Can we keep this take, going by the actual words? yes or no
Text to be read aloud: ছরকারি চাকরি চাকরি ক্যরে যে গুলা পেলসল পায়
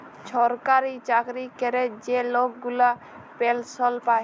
no